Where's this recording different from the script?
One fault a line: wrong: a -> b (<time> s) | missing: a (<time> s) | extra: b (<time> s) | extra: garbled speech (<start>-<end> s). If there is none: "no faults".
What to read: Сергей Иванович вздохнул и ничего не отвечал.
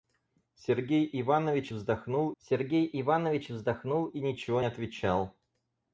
extra: сергей Иванович вздохнул (2.4 s)
missing: не (4.6 s)